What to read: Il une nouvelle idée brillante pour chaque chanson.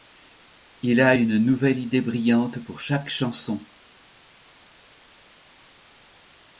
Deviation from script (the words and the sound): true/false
true